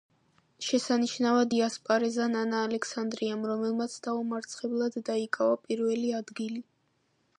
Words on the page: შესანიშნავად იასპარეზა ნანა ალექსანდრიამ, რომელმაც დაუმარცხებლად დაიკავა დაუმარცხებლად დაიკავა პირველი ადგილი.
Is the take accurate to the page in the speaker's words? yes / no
no